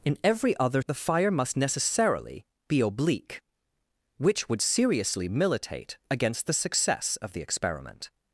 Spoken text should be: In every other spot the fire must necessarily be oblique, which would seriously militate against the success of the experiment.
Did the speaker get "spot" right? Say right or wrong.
wrong